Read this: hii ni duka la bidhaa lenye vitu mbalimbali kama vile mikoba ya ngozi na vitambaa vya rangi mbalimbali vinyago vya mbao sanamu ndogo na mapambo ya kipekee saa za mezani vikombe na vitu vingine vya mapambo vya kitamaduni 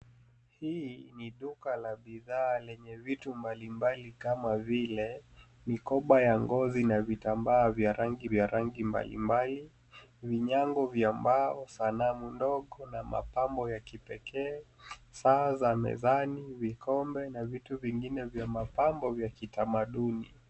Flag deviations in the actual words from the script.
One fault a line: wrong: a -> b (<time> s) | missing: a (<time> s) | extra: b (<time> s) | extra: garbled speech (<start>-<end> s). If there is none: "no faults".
extra: vya rangi (8.2 s)